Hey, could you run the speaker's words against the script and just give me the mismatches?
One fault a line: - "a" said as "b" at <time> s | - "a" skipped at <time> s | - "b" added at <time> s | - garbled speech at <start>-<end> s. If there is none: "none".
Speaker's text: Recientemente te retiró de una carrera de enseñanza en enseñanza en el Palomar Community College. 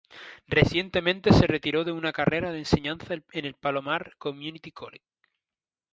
- "te" said as "se" at 1.3 s
- "enseñanza en" skipped at 3.5 s